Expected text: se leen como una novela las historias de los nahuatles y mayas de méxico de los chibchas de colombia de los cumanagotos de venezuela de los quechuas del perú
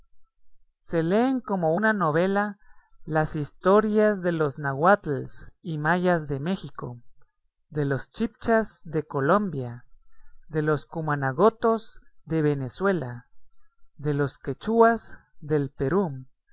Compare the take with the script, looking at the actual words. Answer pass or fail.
pass